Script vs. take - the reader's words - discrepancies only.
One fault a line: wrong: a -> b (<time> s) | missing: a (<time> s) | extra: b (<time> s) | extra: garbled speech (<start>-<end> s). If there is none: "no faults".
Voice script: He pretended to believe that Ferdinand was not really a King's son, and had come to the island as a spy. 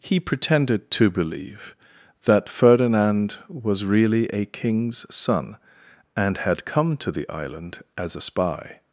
missing: not (3.9 s)